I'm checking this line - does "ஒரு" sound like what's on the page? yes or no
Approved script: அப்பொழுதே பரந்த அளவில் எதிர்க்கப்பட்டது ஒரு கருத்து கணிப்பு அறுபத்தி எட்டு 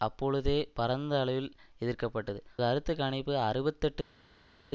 no